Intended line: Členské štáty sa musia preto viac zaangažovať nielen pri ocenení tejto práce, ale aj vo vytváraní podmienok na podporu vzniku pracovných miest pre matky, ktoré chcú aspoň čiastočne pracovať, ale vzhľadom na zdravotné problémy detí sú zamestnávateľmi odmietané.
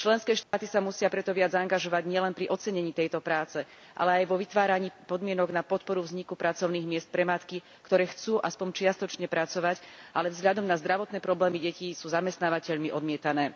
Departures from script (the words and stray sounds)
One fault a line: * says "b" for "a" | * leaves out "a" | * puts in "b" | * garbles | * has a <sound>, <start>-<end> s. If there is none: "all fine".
* has a dropout, 0.4-0.5 s